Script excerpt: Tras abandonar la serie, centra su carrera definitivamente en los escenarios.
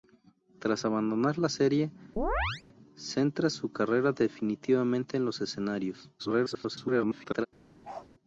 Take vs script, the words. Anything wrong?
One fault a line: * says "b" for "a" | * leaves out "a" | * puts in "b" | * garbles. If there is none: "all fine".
* garbles